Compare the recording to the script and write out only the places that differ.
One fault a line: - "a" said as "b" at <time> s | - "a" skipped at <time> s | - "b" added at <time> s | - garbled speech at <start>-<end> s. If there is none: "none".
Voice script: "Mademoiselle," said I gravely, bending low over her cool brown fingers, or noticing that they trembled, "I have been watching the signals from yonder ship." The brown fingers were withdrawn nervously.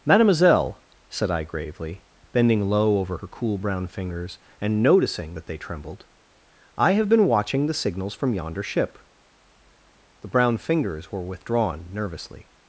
- "or" said as "and" at 4.6 s